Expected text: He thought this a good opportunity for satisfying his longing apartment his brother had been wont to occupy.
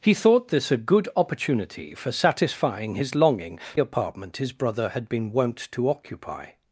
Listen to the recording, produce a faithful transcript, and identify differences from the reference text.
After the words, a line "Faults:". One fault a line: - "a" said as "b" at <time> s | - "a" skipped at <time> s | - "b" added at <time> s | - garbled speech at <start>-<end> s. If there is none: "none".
He thought this a good opportunity for satisfying his longing apartment his brother had been wont to occupy.
Faults:
none